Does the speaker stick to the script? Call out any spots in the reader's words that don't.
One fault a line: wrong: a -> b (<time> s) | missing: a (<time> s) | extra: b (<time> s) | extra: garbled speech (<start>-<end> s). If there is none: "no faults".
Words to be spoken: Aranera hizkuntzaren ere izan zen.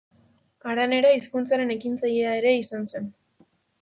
extra: ekintzailea (1.8 s)